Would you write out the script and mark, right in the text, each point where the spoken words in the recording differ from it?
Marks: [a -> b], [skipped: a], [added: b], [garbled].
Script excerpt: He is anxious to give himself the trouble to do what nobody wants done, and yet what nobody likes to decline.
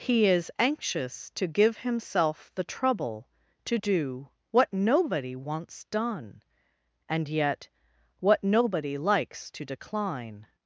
He is anxious to give himself the trouble to do what nobody wants done, and yet what nobody likes to decline.